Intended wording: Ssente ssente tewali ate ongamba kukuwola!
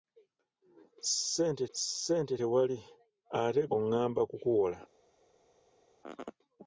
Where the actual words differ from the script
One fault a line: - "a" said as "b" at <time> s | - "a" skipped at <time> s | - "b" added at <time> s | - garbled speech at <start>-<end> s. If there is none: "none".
none